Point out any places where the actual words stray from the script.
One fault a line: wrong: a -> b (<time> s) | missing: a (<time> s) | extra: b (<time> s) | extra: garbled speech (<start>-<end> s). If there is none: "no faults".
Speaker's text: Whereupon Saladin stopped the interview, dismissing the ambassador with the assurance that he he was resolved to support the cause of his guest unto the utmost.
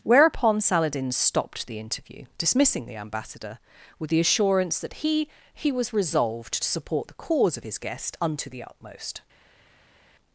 no faults